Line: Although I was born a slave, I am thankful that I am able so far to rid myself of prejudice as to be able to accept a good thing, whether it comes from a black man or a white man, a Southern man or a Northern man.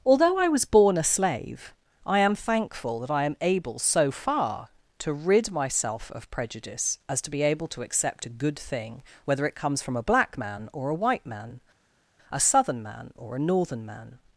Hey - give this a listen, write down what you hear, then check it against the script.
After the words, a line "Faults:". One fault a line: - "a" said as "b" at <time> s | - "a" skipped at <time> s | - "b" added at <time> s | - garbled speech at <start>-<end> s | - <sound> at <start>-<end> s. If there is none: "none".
Although I was born a slave, I am thankful that I am able so far to rid myself of prejudice as to be able to accept a good thing, whether it comes from a black man or a white man, a Southern man or a Northern man.
Faults:
none